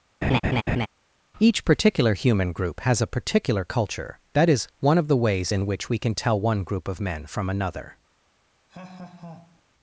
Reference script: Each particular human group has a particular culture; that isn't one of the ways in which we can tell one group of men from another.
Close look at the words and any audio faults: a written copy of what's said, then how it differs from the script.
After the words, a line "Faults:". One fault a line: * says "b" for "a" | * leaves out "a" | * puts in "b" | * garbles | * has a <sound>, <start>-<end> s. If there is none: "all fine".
Each particular human group has a particular culture; that is one of the ways in which we can tell one group of men from another.
Faults:
* has a laugh, 0.2-0.9 s
* says "is" for "isn't"
* has a laugh, 8.7-9.6 s